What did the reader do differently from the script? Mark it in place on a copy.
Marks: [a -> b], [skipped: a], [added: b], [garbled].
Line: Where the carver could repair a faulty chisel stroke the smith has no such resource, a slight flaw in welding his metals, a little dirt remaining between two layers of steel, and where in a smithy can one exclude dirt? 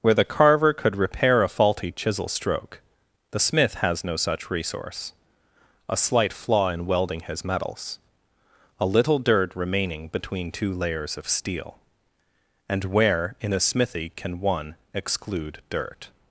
Where the carver could repair a faulty chisel stroke the smith has no such resource, a slight flaw in welding his metals, a little dirt remaining between two layers of steel, and where in a smithy can one exclude dirt?